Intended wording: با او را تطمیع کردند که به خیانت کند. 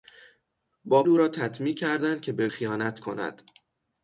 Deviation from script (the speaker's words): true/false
false